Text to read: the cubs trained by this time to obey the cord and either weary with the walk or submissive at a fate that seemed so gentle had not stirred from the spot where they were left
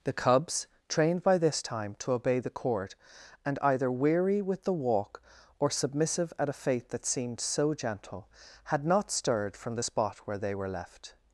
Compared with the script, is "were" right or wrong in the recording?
right